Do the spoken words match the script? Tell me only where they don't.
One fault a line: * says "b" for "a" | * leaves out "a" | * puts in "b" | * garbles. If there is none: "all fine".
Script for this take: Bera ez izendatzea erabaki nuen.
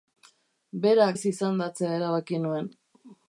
all fine